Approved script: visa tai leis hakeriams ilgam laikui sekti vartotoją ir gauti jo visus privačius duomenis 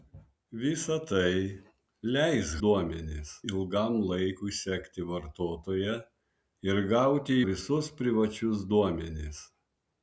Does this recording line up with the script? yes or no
no